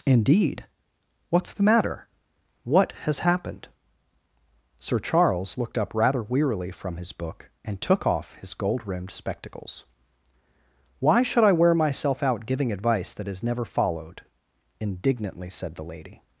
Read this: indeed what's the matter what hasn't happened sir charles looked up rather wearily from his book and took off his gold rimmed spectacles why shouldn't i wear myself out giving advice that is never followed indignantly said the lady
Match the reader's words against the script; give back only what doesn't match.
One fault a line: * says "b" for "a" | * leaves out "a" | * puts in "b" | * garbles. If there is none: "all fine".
* says "has" for "hasn't"
* says "should" for "shouldn't"